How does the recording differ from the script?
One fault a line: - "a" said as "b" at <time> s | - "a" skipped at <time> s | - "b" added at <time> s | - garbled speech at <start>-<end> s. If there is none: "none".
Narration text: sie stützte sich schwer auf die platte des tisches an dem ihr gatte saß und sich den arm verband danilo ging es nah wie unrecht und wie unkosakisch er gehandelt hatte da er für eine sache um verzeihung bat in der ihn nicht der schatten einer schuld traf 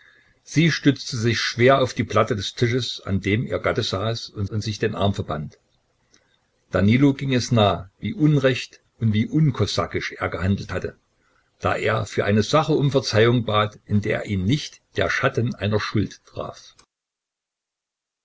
- "und" added at 4.4 s